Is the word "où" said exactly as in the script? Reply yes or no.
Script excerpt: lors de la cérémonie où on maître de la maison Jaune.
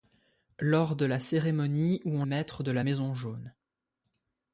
yes